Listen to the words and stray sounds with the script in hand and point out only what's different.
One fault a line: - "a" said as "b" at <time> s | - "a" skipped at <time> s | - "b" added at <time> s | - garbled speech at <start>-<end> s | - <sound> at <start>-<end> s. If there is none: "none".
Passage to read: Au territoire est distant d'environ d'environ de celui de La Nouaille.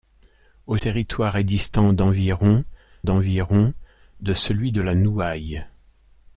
none